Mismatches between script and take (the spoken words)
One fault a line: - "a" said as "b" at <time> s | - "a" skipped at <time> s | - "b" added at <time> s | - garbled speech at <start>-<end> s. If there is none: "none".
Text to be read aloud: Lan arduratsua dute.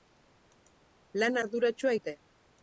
none